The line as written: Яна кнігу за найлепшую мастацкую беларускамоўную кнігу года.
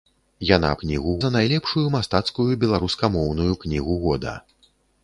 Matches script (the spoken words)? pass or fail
pass